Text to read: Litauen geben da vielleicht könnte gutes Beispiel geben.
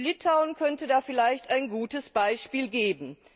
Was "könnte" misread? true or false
true